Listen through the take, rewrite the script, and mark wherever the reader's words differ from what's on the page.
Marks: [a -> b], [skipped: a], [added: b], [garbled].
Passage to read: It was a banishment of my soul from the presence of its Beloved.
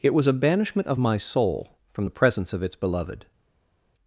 It was a banishment of my soul from the presence of its Beloved.